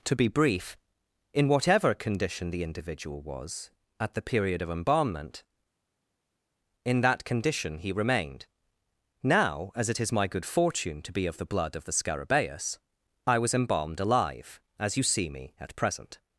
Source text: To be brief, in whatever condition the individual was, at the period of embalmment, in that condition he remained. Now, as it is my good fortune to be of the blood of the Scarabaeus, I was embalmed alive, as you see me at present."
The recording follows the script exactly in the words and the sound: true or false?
true